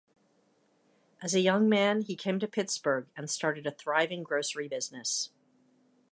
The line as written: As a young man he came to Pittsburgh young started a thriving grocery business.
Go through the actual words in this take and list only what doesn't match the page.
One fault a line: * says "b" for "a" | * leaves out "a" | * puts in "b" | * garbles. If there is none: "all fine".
* says "and" for "young"